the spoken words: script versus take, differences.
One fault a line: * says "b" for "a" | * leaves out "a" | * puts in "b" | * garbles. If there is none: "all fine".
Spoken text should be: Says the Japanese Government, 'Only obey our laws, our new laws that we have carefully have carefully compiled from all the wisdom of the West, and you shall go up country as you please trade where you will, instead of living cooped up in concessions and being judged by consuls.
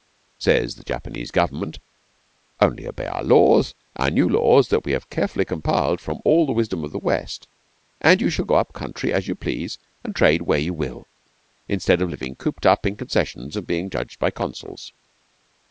* leaves out "have carefully"
* puts in "and"